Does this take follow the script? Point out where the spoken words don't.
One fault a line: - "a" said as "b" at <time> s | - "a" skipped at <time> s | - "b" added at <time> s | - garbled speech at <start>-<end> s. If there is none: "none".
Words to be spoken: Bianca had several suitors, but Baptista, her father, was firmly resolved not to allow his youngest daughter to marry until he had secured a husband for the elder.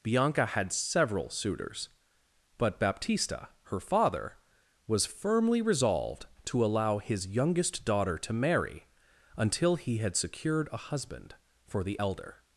- "not" skipped at 6.2 s